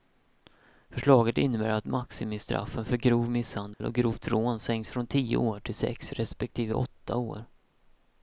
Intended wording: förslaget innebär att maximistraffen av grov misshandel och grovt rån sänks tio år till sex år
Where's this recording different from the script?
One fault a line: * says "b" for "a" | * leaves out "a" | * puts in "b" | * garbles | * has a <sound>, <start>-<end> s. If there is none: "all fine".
* says "för" for "av"
* has a dropout, 3.7-3.8 s
* puts in "från"
* puts in "respektive åtta"